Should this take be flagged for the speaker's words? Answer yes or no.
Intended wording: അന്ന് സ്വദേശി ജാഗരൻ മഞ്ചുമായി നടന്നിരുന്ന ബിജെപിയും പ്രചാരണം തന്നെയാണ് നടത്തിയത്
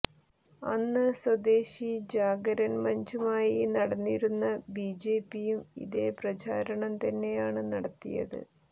yes